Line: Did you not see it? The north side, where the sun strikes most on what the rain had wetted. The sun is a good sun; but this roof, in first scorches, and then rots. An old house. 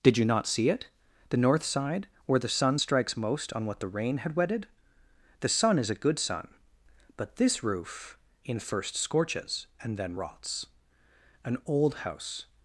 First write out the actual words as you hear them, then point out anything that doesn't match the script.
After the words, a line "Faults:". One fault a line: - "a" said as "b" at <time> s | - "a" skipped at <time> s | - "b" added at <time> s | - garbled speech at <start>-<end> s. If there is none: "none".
Did you not see it? The north side, where the sun strikes most on what the rain had wetted. The sun is a good sun; but this roof, in first scorches, and then rots. An old house.
Faults:
none